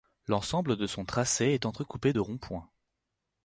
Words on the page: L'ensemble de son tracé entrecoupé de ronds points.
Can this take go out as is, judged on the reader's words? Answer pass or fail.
fail